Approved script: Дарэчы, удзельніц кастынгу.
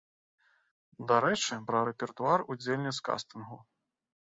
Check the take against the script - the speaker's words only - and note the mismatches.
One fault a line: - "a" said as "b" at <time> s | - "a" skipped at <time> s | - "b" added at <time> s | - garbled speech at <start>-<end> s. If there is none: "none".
- "пра рэпертуар" added at 1.7 s